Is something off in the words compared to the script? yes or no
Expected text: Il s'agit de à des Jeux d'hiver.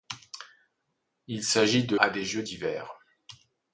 no